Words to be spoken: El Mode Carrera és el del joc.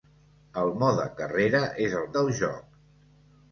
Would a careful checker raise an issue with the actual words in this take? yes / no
no